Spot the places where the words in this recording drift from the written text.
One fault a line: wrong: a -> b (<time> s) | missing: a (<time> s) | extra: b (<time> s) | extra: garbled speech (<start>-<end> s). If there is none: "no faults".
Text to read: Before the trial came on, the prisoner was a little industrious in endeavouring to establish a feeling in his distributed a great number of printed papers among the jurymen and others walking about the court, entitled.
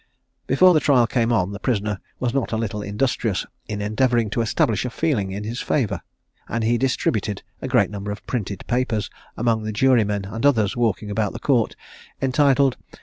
extra: not (2.3 s)
extra: favour and he (5.6 s)